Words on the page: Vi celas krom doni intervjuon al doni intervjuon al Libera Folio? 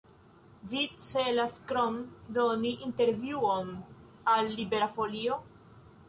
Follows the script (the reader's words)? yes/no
no